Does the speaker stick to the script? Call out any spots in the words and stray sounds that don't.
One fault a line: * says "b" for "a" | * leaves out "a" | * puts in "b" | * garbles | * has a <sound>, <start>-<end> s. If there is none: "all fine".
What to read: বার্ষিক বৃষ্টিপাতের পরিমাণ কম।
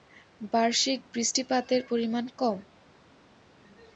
all fine